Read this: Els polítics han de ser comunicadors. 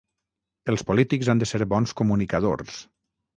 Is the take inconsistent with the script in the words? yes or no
yes